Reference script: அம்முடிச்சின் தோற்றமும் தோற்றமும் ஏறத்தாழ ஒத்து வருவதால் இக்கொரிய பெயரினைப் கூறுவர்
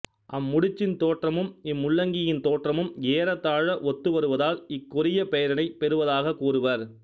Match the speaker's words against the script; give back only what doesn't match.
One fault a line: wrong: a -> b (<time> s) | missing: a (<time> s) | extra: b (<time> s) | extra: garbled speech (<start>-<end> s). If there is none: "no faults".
extra: இம்முள்ளங்கியின் (1.6 s)
extra: பெறுவதாகக் (5.8 s)